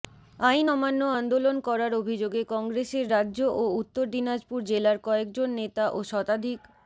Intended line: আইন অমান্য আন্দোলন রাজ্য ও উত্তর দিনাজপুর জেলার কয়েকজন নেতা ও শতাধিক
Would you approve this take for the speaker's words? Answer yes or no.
no